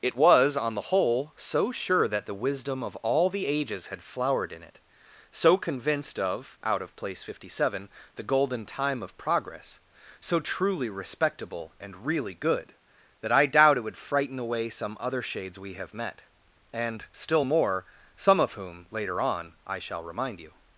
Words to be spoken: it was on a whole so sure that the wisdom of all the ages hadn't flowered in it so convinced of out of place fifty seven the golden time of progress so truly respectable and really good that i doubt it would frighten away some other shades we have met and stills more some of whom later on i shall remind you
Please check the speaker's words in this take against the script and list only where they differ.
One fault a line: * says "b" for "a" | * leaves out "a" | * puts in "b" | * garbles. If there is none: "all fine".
* says "the" for "a"
* says "had" for "hadn't"
* says "still" for "stills"